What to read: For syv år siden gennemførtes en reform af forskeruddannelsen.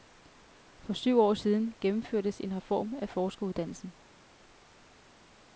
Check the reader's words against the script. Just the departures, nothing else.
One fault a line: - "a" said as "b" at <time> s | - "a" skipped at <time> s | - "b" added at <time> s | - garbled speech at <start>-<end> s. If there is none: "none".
none